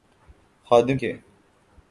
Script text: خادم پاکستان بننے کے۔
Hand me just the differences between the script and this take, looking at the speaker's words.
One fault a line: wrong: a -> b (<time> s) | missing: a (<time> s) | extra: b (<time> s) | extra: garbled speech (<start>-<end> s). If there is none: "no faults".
missing: پاکستان بننے (1.0 s)